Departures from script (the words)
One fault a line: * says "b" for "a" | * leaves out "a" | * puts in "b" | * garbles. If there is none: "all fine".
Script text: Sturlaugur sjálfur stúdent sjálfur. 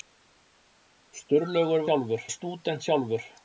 all fine